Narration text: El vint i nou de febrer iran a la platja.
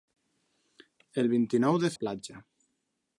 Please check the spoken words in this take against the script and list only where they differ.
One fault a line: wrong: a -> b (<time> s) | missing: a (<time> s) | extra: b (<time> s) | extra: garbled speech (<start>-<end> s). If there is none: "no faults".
missing: febrer iran a (1.9 s)